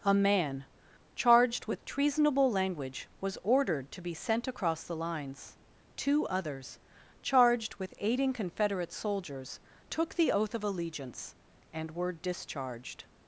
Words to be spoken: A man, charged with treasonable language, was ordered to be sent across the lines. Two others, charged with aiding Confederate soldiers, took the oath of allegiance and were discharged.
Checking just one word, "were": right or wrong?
right